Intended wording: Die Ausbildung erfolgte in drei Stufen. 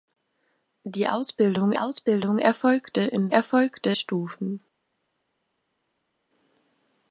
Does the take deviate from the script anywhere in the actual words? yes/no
yes